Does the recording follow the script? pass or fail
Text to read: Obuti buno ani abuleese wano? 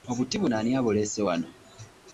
pass